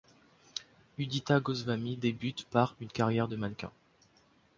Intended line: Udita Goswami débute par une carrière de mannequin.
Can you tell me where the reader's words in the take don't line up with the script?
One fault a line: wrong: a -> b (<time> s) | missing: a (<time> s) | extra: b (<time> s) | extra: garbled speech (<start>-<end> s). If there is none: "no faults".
no faults